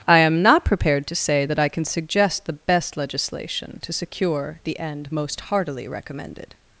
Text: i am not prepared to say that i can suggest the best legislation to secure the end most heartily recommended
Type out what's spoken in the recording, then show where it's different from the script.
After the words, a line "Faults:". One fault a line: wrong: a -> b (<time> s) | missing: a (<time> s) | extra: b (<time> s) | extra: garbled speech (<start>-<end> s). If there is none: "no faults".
i am not prepared to say that i can suggest the best legislation to secure the end most heartily recommended
Faults:
no faults